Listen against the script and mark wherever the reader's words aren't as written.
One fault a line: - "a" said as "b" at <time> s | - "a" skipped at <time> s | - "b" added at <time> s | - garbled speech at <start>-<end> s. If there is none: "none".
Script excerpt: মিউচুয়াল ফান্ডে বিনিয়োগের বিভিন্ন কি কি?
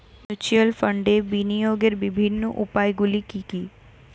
- "উপায়গুলি" added at 2.6 s